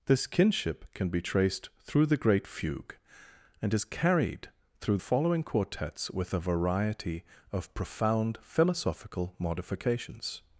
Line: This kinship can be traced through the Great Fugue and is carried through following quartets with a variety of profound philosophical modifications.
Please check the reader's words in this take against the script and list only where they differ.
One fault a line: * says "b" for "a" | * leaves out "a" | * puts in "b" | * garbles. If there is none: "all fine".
all fine